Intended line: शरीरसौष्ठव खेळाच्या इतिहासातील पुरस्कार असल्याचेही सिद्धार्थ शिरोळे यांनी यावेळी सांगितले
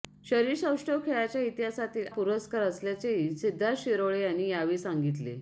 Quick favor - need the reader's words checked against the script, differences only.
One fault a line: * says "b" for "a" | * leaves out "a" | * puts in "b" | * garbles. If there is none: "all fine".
all fine